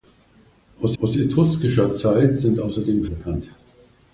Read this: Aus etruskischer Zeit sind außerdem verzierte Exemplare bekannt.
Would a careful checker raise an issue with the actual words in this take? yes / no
yes